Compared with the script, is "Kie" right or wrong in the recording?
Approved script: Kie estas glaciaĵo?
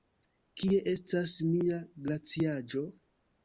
right